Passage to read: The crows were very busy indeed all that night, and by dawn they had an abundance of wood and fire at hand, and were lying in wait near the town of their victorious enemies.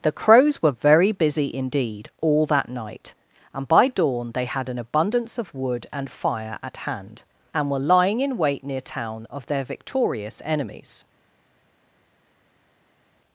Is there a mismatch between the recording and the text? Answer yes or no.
yes